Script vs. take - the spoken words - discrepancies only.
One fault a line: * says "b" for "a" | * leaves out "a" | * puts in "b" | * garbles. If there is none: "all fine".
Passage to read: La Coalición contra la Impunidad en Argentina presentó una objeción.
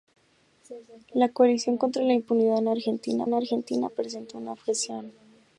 * puts in "en Argentina"